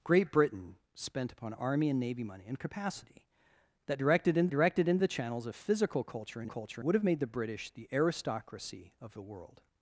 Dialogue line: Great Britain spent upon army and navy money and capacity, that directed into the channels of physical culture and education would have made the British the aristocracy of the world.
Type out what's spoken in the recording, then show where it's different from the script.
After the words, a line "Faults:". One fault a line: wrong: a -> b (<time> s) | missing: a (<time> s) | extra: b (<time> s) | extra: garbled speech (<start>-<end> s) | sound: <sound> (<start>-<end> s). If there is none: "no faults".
Great Britain spent upon army and navy money and capacity, that directed into directed into the channels of physical culture and culture would have made the British the aristocracy of the world.
Faults:
extra: directed into (4.5 s)
wrong: education -> culture (6.4 s)